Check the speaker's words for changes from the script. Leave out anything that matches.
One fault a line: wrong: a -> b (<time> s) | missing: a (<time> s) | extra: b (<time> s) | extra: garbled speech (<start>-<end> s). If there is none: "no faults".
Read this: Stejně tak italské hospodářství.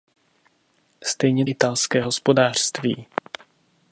missing: tak (1.4 s)